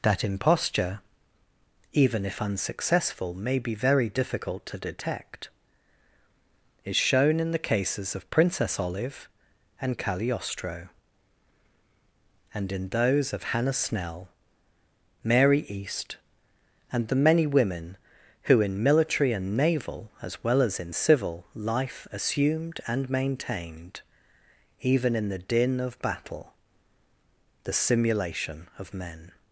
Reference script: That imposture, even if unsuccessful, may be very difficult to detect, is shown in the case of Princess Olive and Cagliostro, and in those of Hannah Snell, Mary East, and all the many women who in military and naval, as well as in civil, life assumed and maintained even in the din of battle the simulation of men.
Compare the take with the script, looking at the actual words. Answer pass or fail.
fail